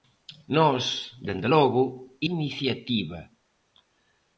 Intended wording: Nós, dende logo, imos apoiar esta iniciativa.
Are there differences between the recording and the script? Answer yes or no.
yes